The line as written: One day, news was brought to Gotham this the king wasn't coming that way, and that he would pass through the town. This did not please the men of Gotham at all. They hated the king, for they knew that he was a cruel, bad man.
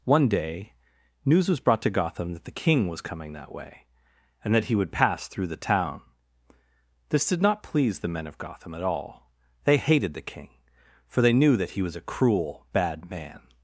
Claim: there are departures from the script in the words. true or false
true